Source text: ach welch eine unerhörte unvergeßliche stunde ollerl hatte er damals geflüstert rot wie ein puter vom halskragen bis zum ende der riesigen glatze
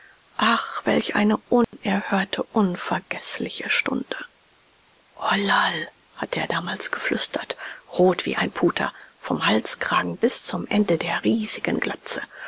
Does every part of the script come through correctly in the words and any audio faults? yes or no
no